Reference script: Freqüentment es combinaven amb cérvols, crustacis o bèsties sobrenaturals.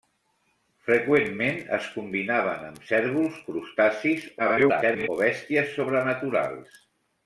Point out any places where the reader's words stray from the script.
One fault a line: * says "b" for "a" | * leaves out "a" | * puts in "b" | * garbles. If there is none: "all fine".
* garbles